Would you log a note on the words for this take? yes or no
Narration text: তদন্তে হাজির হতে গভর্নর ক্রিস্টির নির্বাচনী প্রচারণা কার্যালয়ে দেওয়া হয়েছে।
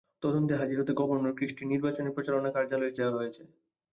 no